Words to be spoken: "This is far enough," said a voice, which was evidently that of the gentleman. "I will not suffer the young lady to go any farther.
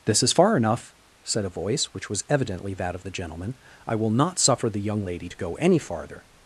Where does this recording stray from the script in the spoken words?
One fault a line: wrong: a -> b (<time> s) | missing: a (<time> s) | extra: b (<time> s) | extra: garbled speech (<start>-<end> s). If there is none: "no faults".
no faults